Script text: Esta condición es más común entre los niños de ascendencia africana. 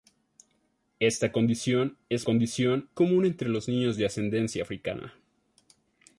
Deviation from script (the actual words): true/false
true